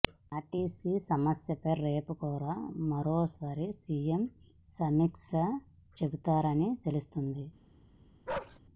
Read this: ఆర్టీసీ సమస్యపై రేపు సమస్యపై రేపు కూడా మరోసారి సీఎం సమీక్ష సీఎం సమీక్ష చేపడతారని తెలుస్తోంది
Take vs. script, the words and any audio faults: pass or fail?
fail